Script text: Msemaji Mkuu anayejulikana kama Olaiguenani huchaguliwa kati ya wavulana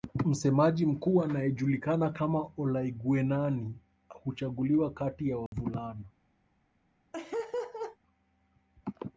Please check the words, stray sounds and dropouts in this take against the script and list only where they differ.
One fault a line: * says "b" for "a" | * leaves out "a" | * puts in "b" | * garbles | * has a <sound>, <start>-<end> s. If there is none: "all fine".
* has a dropout, 5.5-5.5 s
* has a laugh, 7.1-8.0 s